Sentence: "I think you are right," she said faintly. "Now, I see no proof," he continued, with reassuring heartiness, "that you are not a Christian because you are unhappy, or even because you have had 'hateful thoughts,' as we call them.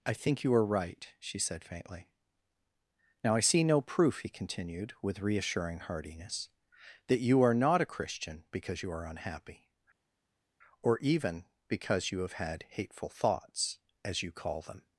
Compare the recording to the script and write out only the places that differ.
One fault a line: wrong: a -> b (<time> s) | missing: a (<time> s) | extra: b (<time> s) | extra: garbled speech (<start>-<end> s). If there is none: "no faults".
wrong: we -> you (14.2 s)